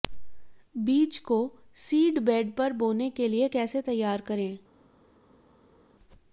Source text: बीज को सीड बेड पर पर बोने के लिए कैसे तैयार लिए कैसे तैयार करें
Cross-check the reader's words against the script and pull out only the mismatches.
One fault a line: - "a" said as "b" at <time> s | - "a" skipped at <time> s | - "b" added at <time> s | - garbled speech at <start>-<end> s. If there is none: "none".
- "पर" skipped at 2.7 s
- "लिए कैसे तैयार" skipped at 4.2 s